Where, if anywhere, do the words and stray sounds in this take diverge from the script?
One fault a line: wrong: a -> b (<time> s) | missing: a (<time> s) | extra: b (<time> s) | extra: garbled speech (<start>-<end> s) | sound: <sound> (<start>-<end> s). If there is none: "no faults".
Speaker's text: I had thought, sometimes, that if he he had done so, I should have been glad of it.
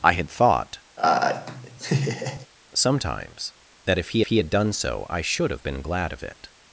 sound: laugh (1.0-2.5 s)